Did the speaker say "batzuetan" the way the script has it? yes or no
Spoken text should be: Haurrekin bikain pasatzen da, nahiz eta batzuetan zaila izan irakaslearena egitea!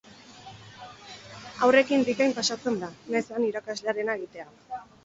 no